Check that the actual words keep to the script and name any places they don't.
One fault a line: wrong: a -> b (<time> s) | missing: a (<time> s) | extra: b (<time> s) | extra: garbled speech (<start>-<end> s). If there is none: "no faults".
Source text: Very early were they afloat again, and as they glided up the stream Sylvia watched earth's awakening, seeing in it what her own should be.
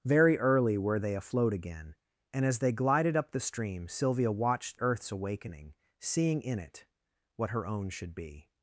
no faults